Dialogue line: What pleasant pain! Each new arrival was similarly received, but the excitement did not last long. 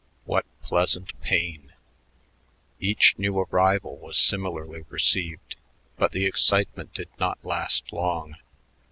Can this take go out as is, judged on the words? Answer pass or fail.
pass